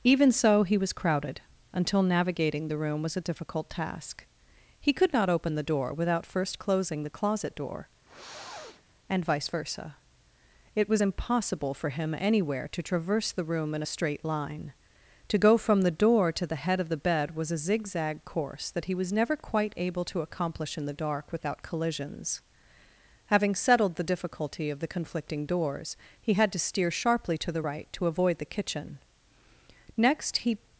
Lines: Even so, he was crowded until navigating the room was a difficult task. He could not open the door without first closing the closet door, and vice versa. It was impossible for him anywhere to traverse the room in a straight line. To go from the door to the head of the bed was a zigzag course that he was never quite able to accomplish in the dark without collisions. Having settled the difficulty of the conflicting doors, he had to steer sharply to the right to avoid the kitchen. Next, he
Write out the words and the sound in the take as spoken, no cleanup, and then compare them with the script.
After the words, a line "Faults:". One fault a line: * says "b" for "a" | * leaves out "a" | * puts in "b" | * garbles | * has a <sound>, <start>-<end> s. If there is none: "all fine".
Even so, he was crowded until navigating the room was a difficult task. He could not open the door without first closing the closet door, and vice versa. It was impossible for him anywhere to traverse the room in a straight line. To go from the door to the head of the bed was a zigzag course that he was never quite able to accomplish in the dark without collisions. Having settled the difficulty of the conflicting doors, he had to steer sharply to the right to avoid the kitchen. Next, he
Faults:
* has a sniff, 8.0-8.8 s